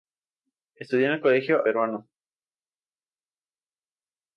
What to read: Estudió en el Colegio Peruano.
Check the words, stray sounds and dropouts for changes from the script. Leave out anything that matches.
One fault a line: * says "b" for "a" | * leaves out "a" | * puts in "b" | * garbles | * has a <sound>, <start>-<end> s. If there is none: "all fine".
all fine